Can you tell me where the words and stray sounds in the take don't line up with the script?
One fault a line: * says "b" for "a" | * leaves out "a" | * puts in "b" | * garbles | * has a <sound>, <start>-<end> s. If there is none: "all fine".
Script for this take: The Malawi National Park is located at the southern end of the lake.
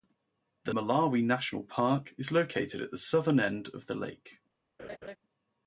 * has a laugh, 4.8-5.2 s